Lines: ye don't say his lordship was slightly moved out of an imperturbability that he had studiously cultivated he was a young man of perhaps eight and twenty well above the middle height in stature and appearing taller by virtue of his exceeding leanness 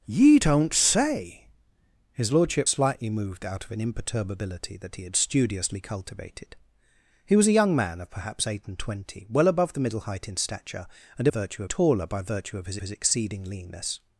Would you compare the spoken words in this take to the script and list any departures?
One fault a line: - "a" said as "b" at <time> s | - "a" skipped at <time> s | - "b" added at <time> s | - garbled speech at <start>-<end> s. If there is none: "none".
- "was" skipped at 2.7 s
- "appearing" said as "virtue" at 11.3 s
- "his" added at 12.8 s